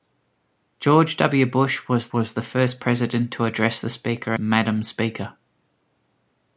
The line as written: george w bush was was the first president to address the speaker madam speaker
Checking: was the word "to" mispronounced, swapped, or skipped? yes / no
no